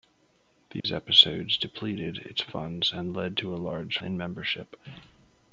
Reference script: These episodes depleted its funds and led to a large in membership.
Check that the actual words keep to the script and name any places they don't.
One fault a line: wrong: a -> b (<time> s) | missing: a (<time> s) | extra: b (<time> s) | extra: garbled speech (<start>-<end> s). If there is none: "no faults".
no faults